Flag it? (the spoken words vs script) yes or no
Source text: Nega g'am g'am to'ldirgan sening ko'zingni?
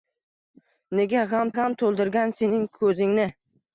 no